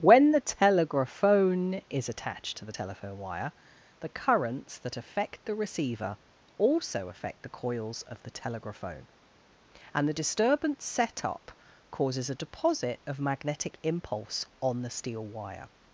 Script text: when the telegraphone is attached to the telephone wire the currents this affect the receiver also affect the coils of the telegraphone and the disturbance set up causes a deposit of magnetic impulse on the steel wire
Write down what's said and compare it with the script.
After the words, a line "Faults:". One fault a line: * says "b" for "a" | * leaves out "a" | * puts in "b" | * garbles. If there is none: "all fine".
when the telegraphone is attached to the telephone wire the currents that affect the receiver also affect the coils of the telegraphone and the disturbance set up causes a deposit of magnetic impulse on the steel wire
Faults:
* says "that" for "this"